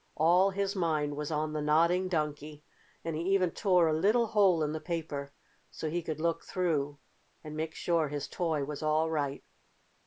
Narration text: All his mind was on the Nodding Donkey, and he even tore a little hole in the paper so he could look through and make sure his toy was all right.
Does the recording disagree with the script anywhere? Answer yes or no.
no